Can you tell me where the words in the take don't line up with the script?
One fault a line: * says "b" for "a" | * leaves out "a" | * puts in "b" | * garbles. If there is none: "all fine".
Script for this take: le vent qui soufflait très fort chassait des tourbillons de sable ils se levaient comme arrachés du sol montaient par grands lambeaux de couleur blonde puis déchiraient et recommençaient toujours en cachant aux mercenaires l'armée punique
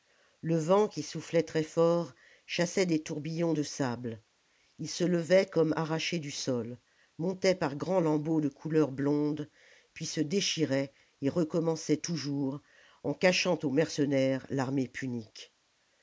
* puts in "se"